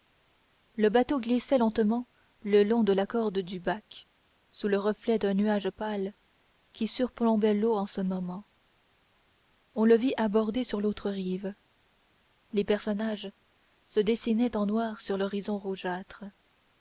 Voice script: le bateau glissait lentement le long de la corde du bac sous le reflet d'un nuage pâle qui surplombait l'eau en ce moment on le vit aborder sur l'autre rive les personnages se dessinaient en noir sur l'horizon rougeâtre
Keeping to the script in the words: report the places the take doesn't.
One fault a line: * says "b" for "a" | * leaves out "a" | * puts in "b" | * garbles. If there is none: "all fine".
all fine